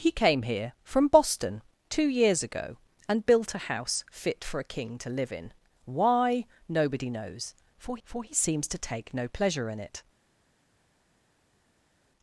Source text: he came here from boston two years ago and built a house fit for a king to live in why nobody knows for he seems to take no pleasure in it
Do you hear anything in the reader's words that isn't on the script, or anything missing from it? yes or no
yes